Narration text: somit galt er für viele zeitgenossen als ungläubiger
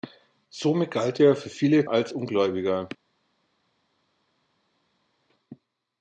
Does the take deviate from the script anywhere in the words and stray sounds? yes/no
yes